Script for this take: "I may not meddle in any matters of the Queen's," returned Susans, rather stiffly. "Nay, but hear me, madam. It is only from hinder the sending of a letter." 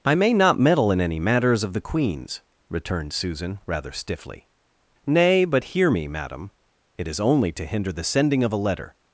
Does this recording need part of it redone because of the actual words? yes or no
yes